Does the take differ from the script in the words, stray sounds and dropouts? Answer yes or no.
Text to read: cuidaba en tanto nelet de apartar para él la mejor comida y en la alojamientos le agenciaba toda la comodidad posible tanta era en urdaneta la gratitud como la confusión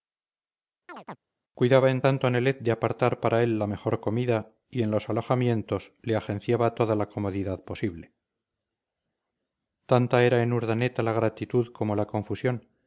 yes